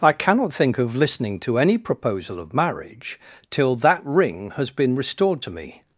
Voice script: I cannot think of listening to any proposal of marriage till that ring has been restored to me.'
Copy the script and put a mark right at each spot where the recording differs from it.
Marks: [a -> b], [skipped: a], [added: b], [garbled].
I cannot think of listening to any proposal of marriage till that ring has been restored to me.'